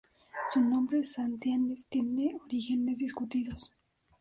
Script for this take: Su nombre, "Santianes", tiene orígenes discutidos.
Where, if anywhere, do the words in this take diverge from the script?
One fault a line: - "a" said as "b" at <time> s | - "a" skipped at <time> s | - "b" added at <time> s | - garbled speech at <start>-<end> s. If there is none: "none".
none